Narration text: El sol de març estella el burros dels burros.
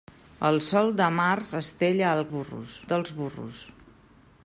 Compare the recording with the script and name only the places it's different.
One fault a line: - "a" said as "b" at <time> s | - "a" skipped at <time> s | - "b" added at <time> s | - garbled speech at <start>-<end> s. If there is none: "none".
none